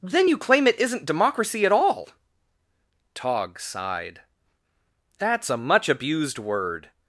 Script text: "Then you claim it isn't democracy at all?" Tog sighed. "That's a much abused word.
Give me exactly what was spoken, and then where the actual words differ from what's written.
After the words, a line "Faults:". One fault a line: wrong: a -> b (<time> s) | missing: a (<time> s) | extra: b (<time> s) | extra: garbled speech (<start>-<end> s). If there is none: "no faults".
"Then you claim it isn't democracy at all?" Tog sighed. "That's a much abused word.
Faults:
no faults